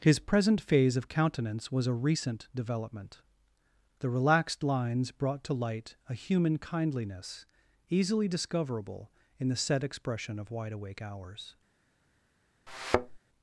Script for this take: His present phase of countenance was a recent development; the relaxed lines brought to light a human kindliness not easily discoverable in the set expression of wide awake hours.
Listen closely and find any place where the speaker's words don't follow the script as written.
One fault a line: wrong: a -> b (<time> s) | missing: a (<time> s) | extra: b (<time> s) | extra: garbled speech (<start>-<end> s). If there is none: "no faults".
missing: not (7.5 s)